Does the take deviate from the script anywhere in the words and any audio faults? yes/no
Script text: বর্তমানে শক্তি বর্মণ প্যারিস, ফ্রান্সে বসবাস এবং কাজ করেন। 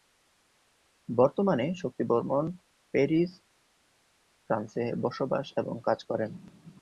no